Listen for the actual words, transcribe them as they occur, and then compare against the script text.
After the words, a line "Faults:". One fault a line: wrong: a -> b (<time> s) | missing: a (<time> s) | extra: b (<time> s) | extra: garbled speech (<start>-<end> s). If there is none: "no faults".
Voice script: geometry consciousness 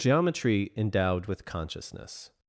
geometry endowed with consciousness
Faults:
extra: endowed with (0.8 s)